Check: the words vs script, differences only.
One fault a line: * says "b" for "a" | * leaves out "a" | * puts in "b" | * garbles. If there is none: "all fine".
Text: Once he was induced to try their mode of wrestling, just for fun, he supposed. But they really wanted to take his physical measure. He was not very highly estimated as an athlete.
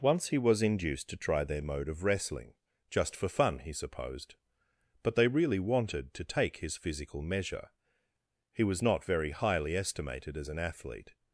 all fine